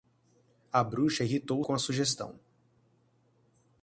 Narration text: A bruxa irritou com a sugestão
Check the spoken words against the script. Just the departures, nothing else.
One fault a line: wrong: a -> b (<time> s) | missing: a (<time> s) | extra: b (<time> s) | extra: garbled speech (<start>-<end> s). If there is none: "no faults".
no faults